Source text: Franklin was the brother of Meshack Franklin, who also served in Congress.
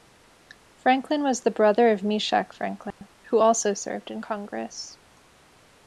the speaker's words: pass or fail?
pass